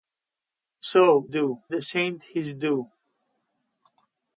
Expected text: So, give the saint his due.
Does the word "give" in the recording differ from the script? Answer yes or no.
yes